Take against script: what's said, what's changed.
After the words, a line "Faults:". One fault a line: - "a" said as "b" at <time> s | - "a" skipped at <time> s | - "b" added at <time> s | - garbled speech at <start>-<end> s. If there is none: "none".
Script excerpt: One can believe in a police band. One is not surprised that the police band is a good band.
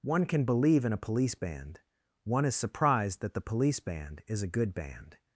One can believe in a police band. One is surprised that the police band is a good band.
Faults:
- "not" skipped at 2.5 s